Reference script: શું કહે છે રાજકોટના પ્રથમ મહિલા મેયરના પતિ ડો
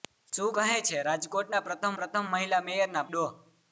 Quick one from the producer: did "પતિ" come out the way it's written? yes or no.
no